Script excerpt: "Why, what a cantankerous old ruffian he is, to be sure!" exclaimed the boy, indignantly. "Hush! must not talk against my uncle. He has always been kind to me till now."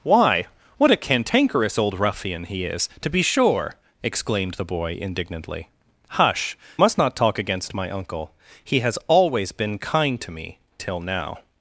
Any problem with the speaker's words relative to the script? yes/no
no